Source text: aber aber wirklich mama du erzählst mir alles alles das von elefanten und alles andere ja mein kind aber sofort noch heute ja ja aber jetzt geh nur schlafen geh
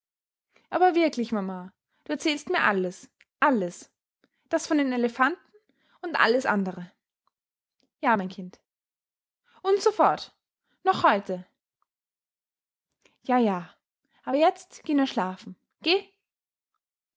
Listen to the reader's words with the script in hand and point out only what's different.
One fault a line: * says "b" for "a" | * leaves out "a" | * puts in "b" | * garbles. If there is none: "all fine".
* leaves out "aber"
* puts in "den"
* says "und" for "aber"